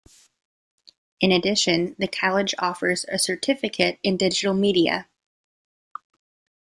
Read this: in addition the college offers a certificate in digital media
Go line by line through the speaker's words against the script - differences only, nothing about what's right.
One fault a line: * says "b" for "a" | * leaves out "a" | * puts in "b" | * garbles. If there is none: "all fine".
all fine